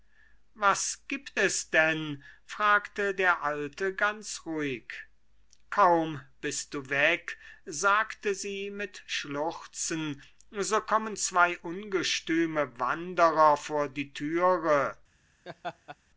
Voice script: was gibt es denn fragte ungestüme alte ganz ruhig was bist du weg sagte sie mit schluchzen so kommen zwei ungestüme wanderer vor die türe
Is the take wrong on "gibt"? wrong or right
right